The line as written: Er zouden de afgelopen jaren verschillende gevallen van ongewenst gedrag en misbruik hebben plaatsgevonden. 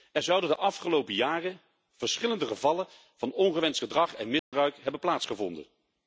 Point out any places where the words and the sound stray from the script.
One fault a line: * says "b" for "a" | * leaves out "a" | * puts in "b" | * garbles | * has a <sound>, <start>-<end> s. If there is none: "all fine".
* has a dropout, 4.4-4.5 s